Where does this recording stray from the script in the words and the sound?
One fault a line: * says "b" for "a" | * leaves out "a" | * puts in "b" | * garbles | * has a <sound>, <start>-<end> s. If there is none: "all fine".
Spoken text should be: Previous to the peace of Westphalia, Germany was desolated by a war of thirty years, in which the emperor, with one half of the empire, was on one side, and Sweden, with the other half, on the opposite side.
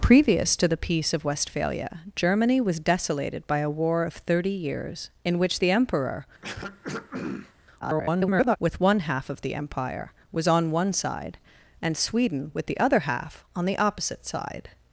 * has a throat clearing, 6.4-7.5 s
* garbles